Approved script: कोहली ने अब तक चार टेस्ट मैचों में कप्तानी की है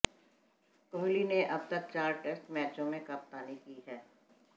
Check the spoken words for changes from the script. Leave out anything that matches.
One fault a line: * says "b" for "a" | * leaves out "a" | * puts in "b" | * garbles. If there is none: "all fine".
all fine